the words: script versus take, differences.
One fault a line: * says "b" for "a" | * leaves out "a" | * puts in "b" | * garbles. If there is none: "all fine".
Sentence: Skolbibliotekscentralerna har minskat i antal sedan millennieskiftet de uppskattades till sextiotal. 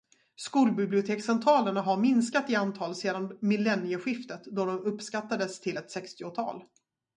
* puts in "då"
* puts in "ett"